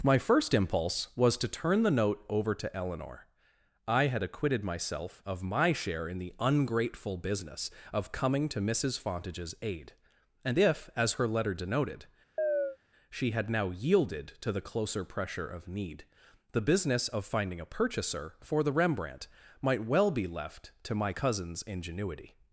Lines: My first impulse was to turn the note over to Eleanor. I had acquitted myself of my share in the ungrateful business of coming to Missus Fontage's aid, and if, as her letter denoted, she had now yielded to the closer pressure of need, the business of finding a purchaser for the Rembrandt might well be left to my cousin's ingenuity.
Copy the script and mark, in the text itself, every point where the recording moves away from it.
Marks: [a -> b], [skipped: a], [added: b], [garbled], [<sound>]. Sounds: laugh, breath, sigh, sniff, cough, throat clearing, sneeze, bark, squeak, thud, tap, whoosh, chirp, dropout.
My first impulse was to turn the note over to Eleanor. I had acquitted myself of my share in the ungrateful business of coming to Missus Fontage's aid, and if, as her letter denoted, [chirp] she had now yielded to the closer pressure of need, the business of finding a purchaser for the Rembrandt might well be left to my cousin's ingenuity.